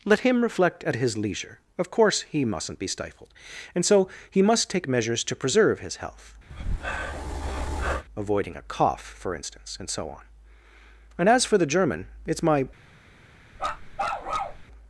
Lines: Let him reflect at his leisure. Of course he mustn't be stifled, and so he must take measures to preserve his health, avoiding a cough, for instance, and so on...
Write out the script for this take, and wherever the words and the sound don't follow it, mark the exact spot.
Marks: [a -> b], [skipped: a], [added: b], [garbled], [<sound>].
Let him reflect at his leisure. Of course he mustn't be stifled, and so he must take measures to preserve his health, [breath] avoiding a cough, for instance, and so on... [added: And as for the German it's my] [bark]